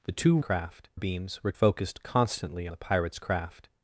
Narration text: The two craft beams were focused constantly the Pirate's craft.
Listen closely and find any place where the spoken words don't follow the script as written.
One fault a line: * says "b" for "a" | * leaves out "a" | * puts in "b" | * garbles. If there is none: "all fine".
all fine